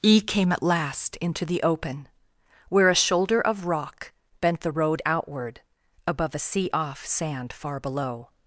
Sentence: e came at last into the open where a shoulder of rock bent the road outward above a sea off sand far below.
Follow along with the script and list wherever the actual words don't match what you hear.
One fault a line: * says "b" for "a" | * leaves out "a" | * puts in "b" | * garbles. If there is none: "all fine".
all fine